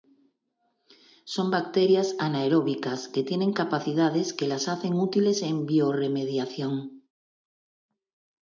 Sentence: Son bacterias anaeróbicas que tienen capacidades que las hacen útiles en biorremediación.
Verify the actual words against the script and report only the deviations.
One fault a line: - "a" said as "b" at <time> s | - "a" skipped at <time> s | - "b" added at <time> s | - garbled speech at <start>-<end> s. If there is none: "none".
none